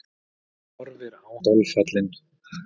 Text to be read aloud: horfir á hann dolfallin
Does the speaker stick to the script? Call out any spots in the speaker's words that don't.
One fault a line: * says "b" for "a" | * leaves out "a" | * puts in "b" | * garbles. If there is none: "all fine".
* leaves out "hann"